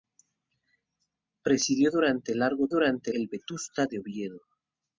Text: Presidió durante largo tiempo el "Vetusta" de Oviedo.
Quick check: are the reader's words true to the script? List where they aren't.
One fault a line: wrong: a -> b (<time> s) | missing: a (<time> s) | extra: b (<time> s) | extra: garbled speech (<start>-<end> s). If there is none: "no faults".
wrong: tiempo -> durante (2.7 s)